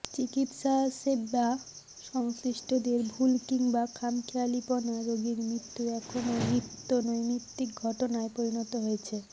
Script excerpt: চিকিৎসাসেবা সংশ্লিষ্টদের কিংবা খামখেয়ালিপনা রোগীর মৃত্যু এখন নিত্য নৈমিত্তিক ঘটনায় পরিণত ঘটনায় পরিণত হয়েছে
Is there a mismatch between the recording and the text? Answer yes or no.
yes